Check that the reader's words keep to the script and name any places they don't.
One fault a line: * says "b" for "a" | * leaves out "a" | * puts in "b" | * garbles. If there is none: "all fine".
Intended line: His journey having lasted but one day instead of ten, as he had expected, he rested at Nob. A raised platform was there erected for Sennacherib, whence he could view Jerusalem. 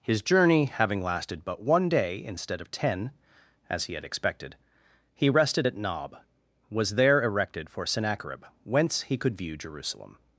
* leaves out "A raised platform"